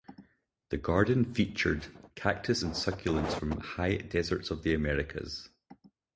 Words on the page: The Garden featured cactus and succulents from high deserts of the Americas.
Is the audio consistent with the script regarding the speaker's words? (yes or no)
yes